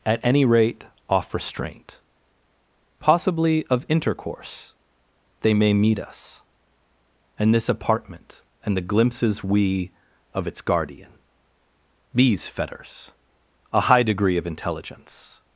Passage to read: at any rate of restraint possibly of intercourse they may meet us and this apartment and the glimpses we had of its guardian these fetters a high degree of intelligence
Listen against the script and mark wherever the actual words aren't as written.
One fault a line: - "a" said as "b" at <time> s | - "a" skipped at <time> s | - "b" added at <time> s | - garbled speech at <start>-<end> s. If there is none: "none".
- "of" said as "off" at 1.1 s
- "had" skipped at 9.9 s